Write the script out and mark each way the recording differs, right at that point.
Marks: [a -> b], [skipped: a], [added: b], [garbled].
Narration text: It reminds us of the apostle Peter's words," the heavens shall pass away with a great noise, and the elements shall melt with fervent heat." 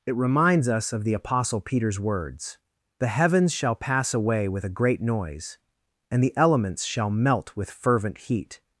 It reminds us of the apostle Peter's words," the heavens shall pass away with a great noise, and the elements shall melt with fervent heat."